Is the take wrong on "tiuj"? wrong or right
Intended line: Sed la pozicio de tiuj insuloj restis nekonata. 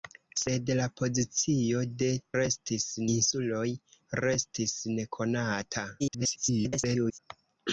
wrong